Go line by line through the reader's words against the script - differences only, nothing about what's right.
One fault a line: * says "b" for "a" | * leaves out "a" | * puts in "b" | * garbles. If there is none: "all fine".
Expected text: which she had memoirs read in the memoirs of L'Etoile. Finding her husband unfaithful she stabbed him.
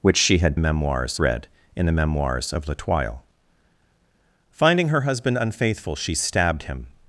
all fine